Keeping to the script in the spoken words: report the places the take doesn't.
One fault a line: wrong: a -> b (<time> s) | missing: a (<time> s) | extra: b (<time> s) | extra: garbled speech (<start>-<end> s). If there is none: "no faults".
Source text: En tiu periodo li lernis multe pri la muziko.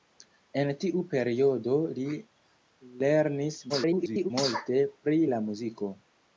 extra: garbled speech (3.7-4.3 s)